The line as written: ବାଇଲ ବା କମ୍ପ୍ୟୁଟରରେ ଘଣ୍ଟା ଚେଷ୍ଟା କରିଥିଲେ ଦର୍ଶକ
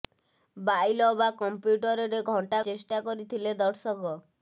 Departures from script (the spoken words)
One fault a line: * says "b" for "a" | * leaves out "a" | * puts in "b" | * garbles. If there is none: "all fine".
all fine